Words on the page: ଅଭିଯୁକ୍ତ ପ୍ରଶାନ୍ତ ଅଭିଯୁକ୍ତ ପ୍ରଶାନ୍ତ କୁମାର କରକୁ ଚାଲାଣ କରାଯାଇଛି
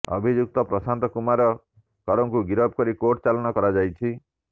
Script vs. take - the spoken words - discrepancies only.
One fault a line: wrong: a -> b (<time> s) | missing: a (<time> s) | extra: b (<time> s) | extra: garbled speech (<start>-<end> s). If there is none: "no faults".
wrong: ଅଭିଯୁକ୍ତ ପ୍ରଶାନ୍ତ କୁମାର କରକୁ -> କୁମାର କରକୁ ଗିରଫ କରି କୋର୍ଟ (1.1 s)